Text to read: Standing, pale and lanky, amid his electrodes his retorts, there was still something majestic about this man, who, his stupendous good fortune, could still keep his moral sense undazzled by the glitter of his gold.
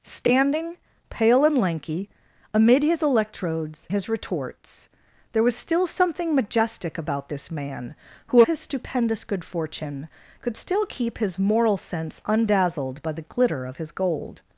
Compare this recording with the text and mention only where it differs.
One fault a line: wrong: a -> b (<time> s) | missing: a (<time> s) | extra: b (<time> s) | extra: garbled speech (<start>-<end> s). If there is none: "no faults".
no faults